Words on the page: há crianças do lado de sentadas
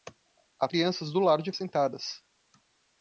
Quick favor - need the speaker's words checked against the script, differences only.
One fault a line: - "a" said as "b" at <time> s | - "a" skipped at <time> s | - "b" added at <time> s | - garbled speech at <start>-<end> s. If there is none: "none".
none